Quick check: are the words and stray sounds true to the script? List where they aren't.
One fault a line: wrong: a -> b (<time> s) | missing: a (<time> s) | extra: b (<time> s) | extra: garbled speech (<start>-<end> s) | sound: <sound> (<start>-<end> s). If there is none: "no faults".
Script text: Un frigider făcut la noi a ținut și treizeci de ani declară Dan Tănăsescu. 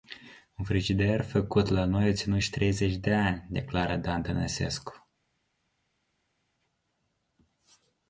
no faults